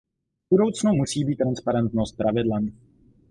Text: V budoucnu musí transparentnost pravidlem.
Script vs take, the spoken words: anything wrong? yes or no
yes